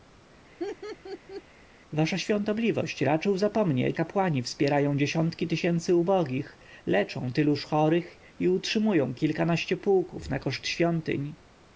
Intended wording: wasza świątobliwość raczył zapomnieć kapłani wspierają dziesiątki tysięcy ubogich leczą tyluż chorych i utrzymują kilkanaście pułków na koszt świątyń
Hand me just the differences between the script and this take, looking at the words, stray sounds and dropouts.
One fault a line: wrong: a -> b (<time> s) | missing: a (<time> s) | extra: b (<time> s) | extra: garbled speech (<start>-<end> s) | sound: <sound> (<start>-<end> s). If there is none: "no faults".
sound: laugh (0.6-1.4 s)